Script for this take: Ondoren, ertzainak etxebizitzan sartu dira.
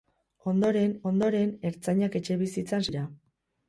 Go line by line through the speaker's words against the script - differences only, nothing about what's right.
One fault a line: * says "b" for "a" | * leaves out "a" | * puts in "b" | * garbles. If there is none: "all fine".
* puts in "ondoren"
* leaves out "sartu"